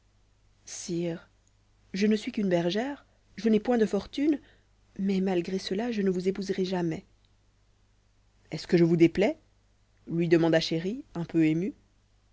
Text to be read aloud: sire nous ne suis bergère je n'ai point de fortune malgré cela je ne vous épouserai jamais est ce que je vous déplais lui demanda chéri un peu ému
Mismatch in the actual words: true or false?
true